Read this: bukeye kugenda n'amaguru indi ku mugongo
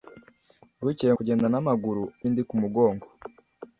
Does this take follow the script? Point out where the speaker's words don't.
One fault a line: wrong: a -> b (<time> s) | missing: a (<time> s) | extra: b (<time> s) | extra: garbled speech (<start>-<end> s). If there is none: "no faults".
no faults